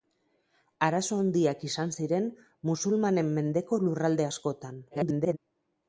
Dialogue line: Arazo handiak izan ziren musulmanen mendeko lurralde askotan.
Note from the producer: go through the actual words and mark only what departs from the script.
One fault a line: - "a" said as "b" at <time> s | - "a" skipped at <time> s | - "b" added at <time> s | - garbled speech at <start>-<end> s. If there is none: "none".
- garbled speech at 4.9-5.4 s